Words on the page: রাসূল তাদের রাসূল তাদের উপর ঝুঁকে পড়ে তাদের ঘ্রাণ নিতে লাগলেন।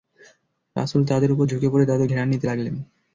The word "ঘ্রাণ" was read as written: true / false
true